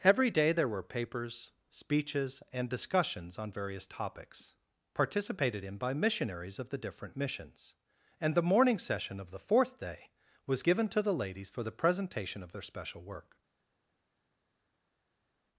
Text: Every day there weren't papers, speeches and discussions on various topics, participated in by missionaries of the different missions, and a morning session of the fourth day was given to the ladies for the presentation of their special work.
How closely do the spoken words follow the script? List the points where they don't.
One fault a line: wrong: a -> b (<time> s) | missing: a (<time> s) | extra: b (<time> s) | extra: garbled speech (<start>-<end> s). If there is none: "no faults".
wrong: weren't -> were (0.7 s)
wrong: a -> the (8.3 s)